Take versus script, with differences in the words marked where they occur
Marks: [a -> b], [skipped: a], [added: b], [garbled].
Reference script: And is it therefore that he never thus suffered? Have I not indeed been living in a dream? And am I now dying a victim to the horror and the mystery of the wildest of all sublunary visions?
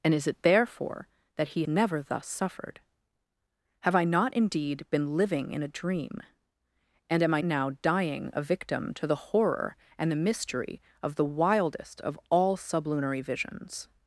And is it therefore that he never thus suffered? Have I not indeed been living in a dream? And am I now dying a victim to the horror and the mystery of the wildest of all sublunary visions?